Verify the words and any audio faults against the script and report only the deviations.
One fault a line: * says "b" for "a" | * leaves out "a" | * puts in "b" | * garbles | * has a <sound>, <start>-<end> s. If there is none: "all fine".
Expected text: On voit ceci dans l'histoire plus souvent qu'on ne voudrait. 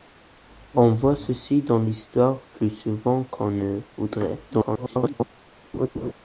* garbles
* has a laugh, 5.7-6.1 s